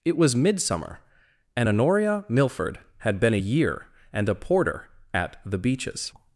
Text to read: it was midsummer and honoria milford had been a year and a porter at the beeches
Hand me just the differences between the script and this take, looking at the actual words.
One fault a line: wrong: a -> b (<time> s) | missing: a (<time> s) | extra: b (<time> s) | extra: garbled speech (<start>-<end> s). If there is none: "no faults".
no faults